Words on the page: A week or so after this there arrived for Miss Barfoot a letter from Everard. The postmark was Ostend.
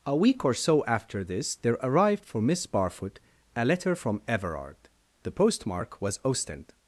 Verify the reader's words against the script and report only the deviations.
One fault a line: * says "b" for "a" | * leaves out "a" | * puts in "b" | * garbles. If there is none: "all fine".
all fine